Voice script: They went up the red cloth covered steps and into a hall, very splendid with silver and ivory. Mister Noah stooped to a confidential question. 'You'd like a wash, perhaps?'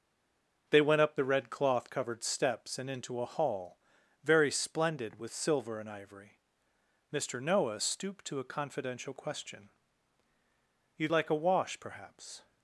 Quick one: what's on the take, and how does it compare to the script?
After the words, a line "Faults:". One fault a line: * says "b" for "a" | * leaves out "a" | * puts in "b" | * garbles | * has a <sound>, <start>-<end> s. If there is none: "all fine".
They went up the red cloth covered steps and into a hall, very splendid with silver and ivory. Mister Noah stooped to a confidential question. 'You'd like a wash, perhaps?'
Faults:
all fine